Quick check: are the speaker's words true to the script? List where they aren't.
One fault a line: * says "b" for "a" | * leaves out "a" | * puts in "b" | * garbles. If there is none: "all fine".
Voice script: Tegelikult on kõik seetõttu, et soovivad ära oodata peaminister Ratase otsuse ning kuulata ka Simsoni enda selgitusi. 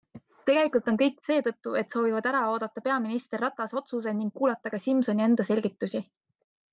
all fine